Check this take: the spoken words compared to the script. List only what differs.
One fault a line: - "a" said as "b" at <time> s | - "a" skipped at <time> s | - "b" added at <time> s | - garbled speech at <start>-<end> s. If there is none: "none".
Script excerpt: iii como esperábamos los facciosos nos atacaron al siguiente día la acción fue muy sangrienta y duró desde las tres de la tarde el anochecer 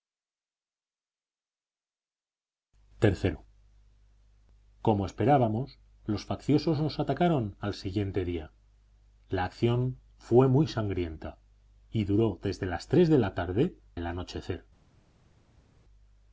none